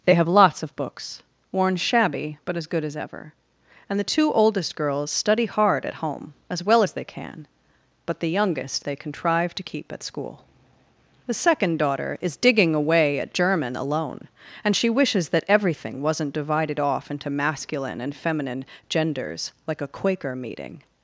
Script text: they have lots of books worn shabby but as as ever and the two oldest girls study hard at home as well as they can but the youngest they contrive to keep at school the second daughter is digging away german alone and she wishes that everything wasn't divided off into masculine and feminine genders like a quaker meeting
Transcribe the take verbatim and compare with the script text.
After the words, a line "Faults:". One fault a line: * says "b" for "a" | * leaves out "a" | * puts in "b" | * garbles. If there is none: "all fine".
they have lots of books worn shabby but as good as ever and the two oldest girls study hard at home as well as they can but the youngest they contrive to keep at school the second daughter is digging away at german alone and she wishes that everything wasn't divided off into masculine and feminine genders like a quaker meeting
Faults:
* puts in "good"
* puts in "at"